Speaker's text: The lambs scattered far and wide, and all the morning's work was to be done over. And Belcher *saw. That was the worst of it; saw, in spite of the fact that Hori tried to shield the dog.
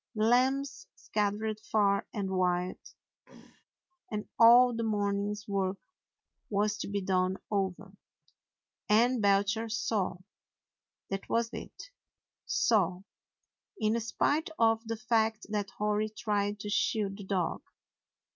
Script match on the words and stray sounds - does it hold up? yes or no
no